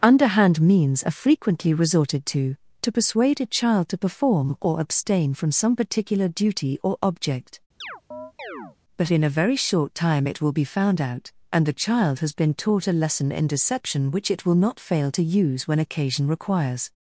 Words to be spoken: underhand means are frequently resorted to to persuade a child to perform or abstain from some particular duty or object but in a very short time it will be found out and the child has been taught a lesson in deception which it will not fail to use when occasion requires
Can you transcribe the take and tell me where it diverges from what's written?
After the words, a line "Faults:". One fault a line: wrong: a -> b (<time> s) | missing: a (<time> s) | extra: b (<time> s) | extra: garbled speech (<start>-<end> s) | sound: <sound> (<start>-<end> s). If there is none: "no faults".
underhand means are frequently resorted to to persuade a child to perform or abstain from some particular duty or object but in a very short time it will be found out and the child has been taught a lesson in deception which it will not fail to use when occasion requires
Faults:
sound: chirp (7.8-8.8 s)